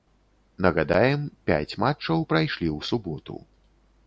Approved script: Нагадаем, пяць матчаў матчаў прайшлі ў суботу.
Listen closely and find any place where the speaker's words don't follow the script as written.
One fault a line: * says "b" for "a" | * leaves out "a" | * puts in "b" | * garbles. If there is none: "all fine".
* leaves out "матчаў"